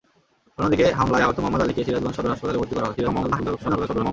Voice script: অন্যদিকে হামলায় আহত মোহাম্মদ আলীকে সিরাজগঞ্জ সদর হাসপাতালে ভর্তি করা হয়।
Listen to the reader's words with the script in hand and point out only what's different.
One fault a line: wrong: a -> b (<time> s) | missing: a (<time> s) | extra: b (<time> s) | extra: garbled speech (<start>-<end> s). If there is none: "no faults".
extra: garbled speech (3.0-4.1 s)